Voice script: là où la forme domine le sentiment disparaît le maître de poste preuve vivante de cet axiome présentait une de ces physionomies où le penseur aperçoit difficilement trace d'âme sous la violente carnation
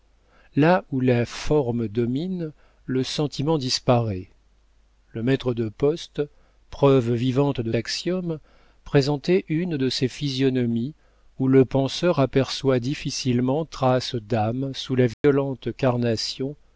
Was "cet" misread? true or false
true